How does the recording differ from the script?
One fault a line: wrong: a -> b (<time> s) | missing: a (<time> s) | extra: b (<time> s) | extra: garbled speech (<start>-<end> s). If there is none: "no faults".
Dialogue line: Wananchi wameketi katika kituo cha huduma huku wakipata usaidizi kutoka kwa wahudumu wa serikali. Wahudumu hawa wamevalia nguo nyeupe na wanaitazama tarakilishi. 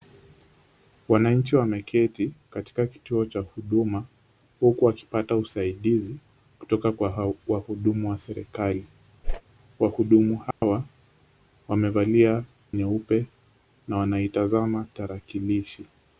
missing: nguo (12.4 s)